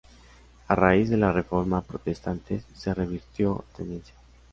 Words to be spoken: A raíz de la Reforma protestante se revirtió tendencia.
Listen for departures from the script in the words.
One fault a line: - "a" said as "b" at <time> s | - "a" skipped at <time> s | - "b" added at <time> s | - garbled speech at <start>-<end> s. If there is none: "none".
none